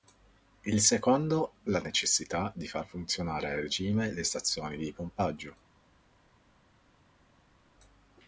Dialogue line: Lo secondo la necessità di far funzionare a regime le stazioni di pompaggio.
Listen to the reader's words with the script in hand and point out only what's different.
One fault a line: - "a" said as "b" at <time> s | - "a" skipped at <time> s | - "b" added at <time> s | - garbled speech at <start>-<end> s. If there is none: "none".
- "Lo" said as "Il" at 0.6 s